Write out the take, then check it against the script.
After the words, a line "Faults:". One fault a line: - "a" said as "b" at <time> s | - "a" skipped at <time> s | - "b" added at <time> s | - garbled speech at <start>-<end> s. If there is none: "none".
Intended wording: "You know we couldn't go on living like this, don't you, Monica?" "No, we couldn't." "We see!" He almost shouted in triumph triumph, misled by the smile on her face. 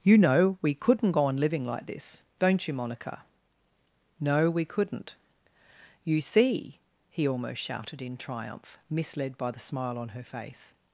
"You know we couldn't go on living like this, don't you, Monica?" "No, we couldn't." "You see!" He almost shouted in triumph, misled by the smile on her face.
Faults:
- "We" said as "You" at 6.0 s
- "triumph" skipped at 8.8 s